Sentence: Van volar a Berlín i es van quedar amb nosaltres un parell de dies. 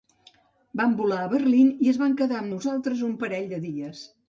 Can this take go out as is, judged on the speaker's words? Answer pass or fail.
pass